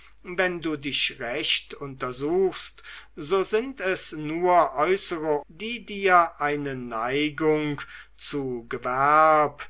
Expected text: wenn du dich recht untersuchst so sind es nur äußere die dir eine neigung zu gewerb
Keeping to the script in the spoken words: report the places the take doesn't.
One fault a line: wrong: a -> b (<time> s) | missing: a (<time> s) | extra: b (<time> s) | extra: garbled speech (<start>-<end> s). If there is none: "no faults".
no faults